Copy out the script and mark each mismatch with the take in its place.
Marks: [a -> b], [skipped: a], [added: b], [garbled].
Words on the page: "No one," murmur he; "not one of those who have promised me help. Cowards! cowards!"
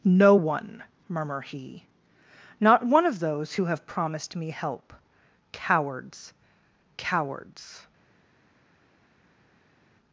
"No one," murmur he; "not one of those who have promised me help. Cowards! cowards!"